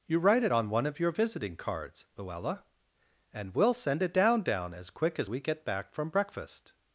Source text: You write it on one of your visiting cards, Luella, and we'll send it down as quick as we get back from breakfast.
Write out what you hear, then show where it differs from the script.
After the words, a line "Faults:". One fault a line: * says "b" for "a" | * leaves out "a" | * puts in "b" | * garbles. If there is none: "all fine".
You write it on one of your visiting cards, Luella, and we'll send it down down as quick as we get back from breakfast.
Faults:
* puts in "down"